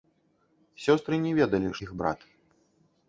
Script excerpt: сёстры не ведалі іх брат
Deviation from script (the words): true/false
false